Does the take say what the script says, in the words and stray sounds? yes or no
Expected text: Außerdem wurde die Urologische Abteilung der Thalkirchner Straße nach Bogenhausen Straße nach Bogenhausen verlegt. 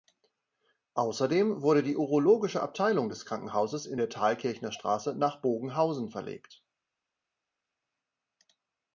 no